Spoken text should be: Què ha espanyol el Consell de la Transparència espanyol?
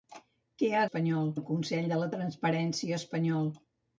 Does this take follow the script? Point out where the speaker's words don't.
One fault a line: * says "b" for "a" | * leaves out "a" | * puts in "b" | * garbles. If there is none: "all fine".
all fine